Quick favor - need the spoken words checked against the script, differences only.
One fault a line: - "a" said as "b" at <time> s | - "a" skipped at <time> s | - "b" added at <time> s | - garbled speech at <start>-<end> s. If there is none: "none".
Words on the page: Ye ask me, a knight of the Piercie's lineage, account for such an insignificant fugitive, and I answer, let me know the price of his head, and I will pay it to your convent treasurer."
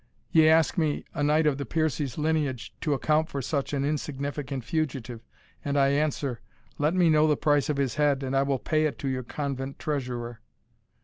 - "to" added at 2.8 s